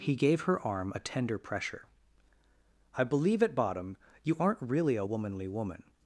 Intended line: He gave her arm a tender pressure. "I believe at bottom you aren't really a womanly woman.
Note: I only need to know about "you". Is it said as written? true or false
true